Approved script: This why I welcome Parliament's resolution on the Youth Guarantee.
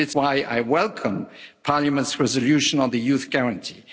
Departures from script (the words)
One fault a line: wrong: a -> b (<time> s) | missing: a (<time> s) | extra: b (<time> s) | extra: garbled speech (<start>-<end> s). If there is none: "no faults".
no faults